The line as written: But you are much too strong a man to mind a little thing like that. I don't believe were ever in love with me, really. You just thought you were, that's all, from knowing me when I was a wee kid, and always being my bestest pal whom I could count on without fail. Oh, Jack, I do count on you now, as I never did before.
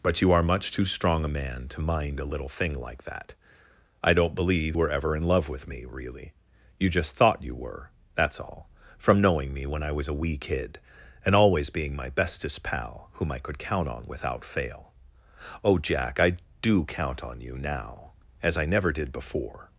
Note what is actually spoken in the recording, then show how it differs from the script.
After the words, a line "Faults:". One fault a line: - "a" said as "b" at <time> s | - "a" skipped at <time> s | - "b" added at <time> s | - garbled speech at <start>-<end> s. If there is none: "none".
But you are much too strong a man to mind a little thing like that. I don't believe were ever in love with me, really. You just thought you were, that's all, from knowing me when I was a wee kid, and always being my bestest pal whom I could count on without fail. Oh, Jack, I do count on you now, as I never did before.
Faults:
none